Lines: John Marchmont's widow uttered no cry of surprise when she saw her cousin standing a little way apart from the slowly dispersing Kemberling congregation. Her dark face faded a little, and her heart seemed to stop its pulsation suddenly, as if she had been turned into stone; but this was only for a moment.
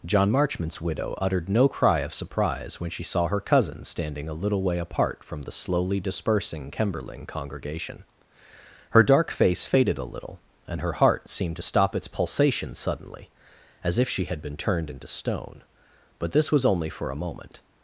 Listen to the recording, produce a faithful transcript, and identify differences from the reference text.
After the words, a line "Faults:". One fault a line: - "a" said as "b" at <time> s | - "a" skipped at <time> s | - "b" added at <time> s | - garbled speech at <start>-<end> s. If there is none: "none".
John Marchmont's widow uttered no cry of surprise when she saw her cousin standing a little way apart from the slowly dispersing Kemberling congregation. Her dark face faded a little, and her heart seemed to stop its pulsation suddenly, as if she had been turned into stone; but this was only for a moment.
Faults:
none